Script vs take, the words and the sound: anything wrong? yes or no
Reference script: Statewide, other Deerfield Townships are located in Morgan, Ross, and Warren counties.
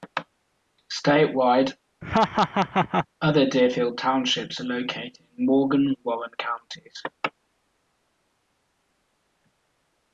yes